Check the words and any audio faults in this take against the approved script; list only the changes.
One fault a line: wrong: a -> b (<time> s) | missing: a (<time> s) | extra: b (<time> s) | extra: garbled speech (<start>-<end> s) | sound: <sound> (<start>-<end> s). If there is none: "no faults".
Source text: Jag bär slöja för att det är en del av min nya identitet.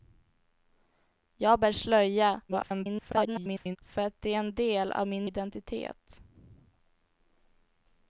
extra: garbled speech (2.5-3.8 s)
missing: nya (5.3 s)